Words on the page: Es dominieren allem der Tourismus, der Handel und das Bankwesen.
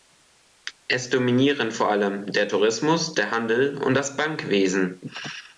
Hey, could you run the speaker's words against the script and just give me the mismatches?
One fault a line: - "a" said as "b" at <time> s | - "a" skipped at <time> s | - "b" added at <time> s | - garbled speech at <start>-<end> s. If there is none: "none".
- "vor" added at 1.7 s